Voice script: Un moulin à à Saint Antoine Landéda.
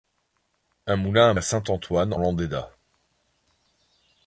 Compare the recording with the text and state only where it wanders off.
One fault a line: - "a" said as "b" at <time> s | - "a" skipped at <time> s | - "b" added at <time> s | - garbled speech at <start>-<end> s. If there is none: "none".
none